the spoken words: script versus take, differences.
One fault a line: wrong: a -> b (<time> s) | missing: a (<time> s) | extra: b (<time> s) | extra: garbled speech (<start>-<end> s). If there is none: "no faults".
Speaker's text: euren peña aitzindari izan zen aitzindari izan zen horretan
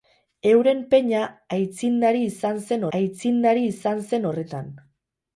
no faults